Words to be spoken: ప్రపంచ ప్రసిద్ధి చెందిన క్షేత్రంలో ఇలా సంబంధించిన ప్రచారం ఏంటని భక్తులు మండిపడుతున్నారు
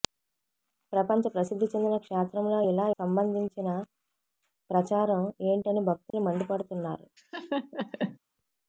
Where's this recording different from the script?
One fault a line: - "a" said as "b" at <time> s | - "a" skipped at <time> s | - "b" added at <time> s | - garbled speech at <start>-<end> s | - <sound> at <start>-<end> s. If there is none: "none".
- dropout at 6.1-6.1 s
- laugh at 7.2-8.2 s